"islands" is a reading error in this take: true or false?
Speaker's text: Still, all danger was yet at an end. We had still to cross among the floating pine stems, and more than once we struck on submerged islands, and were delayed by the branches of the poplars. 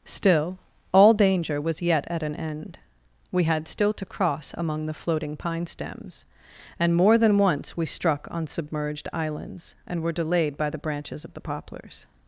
false